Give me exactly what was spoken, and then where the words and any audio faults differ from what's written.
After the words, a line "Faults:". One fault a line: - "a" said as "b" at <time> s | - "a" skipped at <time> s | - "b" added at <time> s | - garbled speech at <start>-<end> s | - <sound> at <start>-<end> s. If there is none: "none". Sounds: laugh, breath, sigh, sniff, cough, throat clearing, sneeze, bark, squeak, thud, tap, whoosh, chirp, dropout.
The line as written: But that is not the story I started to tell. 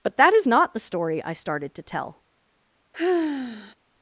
But that is not the story I started to tell.
Faults:
- sigh at 2.9-3.7 s